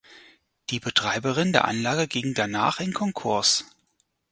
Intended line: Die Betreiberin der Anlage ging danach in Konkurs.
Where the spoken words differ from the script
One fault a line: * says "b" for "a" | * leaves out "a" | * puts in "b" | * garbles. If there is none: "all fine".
all fine